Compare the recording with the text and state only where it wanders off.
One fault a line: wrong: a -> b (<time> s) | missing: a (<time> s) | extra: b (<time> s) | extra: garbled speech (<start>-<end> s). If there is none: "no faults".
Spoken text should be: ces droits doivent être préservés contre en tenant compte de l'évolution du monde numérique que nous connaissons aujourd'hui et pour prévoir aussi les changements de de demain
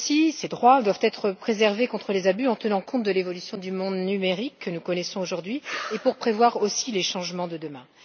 extra: les abus (2.1 s)
missing: de (7.6 s)